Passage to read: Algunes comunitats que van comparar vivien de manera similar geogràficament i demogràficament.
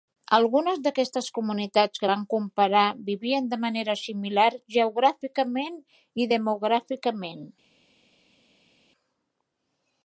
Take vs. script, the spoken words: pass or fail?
fail